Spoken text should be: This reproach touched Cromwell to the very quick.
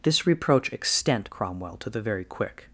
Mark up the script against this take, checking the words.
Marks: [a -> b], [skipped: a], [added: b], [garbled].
This reproach [touched -> extent] Cromwell to the very quick.